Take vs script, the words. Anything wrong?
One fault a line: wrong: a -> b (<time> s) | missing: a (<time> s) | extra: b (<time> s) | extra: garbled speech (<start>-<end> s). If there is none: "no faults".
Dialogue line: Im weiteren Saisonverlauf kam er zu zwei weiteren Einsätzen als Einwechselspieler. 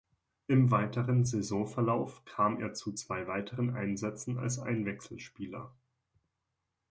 no faults